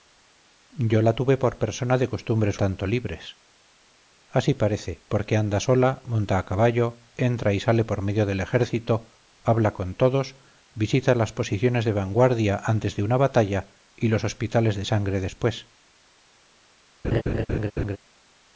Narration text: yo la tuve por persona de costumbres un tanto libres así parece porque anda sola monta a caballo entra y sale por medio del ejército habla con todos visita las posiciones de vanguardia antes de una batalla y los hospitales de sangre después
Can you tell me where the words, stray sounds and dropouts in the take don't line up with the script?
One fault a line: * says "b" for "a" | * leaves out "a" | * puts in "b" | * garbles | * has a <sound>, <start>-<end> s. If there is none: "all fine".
* leaves out "un"
* has a laugh, 17.0-18.0 s